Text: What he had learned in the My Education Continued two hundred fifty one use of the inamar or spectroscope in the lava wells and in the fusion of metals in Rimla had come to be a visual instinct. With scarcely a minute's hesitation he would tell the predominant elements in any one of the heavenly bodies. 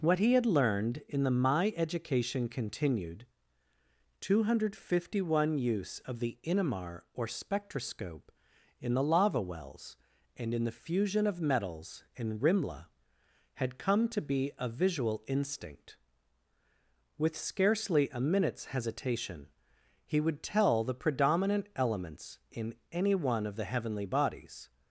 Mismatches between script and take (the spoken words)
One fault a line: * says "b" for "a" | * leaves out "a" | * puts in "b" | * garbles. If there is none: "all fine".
all fine